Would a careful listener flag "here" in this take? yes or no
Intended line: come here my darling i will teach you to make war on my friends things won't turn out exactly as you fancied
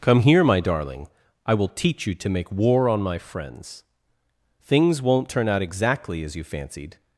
no